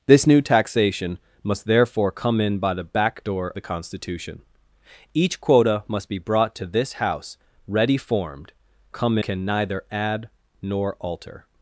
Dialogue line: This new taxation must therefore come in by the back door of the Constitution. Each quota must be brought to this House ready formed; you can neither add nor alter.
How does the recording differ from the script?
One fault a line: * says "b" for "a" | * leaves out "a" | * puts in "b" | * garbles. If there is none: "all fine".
* leaves out "of"
* says "come" for "you"